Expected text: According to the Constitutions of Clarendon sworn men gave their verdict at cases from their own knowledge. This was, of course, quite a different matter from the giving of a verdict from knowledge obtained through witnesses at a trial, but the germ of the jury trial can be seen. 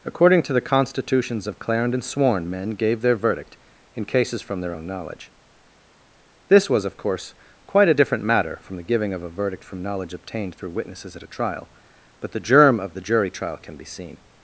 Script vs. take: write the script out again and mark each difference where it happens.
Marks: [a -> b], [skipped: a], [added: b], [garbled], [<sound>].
According to the Constitutions of Clarendon sworn men gave their verdict [at -> in] cases from their own knowledge. This was, of course, quite a different matter from the giving of a verdict from knowledge obtained through witnesses at a trial, but the germ of the jury trial can be seen.